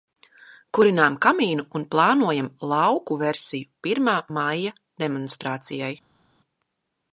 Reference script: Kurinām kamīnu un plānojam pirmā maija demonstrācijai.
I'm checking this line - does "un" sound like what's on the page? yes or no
yes